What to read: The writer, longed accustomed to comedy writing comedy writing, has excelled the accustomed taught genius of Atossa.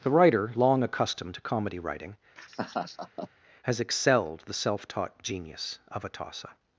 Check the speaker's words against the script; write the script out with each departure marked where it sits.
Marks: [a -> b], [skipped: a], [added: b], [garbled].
The writer, [longed -> long] accustomed to comedy writing [skipped: comedy writing,] has excelled the [accustomed -> self] taught genius of Atossa.